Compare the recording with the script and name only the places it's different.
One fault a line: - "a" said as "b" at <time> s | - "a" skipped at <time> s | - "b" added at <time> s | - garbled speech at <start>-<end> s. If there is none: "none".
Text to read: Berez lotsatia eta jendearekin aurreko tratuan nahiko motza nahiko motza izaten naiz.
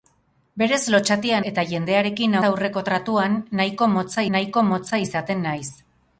none